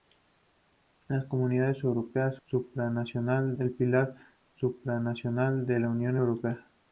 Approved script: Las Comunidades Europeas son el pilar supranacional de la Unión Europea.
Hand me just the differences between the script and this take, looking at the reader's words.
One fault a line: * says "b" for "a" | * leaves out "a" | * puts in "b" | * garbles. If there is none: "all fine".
* says "supranacional" for "son"